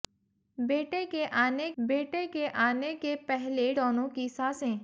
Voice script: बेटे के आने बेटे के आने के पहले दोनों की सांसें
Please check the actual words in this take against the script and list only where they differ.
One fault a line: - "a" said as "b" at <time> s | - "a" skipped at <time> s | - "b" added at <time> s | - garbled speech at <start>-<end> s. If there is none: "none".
none